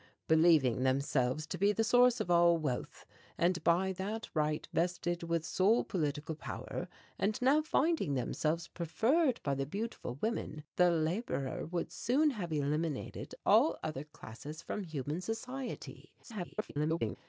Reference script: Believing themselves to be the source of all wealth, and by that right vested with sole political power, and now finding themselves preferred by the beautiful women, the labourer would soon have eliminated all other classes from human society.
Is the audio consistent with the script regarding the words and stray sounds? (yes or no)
no